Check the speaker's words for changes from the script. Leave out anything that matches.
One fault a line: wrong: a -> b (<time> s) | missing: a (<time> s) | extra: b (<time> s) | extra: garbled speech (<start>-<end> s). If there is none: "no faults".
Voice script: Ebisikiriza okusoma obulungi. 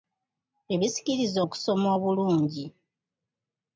no faults